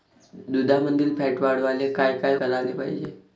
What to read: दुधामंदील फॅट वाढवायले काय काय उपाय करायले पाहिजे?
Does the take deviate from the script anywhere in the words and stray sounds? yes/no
yes